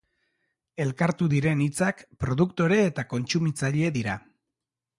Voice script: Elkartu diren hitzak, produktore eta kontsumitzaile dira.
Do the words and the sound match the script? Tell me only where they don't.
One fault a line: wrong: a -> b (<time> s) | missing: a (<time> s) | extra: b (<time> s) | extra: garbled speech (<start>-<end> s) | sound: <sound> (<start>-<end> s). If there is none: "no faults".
no faults